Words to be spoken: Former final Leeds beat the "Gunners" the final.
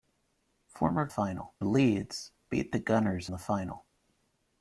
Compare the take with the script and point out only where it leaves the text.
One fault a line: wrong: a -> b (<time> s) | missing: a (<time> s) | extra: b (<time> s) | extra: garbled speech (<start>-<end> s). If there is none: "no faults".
no faults